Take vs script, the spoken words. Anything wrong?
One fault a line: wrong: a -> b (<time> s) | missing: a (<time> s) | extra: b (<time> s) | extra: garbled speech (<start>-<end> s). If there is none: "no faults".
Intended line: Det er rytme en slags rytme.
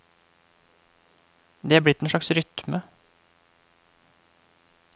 wrong: rytme -> blitt (1.9 s)